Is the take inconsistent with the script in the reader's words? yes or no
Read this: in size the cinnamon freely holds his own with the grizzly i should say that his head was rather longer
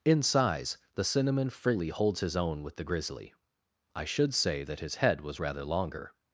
no